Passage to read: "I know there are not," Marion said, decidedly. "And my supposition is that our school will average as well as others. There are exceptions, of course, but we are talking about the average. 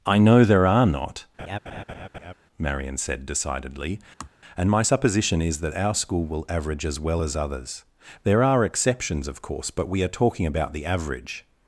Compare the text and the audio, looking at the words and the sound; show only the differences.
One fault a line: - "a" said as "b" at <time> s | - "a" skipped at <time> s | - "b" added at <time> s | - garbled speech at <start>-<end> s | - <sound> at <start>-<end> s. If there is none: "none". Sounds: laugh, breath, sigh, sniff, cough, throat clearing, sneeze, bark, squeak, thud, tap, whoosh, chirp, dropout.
- laugh at 1.4-2.3 s
- sigh at 4.2-4.3 s